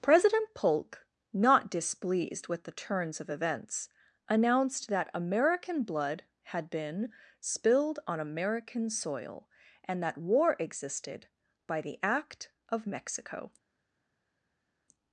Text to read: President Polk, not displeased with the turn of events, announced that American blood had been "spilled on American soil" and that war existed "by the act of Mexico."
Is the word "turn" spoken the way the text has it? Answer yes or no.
no